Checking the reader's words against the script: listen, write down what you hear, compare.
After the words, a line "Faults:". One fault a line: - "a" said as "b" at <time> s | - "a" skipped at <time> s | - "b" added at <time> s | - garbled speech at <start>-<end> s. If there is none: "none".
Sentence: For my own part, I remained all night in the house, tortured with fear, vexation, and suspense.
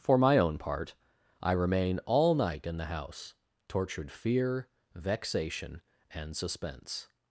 For my own part, I remain all night in the house, tortured fear, vexation, and suspense.
Faults:
- "remained" said as "remain" at 1.5 s
- "with" skipped at 4.1 s